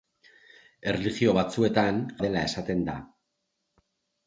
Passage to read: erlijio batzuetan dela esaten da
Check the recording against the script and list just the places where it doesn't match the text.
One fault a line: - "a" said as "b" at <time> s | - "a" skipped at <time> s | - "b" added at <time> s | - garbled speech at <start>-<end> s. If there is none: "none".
none